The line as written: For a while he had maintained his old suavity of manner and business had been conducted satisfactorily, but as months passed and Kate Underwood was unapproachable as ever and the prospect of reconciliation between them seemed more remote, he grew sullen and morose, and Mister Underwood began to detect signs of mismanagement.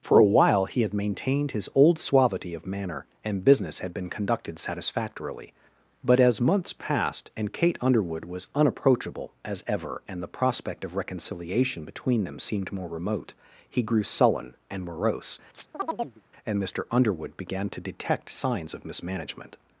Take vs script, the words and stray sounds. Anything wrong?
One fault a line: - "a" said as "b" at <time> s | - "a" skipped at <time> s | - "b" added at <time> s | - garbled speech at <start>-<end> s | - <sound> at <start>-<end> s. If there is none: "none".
- chirp at 15.5-16.2 s